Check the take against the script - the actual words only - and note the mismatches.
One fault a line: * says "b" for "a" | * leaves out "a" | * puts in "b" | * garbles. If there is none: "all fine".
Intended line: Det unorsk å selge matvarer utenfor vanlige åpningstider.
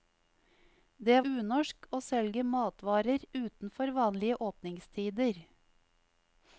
all fine